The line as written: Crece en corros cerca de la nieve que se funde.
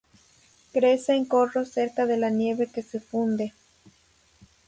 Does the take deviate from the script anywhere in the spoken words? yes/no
no